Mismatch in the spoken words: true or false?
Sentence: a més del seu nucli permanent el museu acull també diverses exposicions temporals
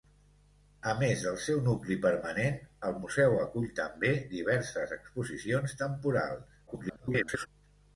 true